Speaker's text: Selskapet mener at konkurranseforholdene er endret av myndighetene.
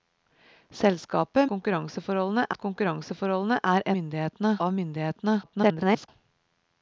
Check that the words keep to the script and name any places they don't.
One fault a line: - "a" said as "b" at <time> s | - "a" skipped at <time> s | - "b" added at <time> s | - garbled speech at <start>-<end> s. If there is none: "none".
- "mener" said as "konkurranseforholdene" at 1.5 s
- "endret" said as "myndighetene" at 3.9 s
- garbled speech at 5.4-6.1 s